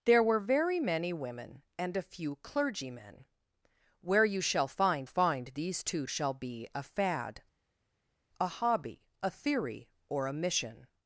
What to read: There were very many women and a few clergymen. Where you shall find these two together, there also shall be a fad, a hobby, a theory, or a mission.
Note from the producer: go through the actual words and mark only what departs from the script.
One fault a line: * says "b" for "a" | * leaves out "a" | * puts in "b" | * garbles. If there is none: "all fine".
* puts in "find"
* leaves out "together there also"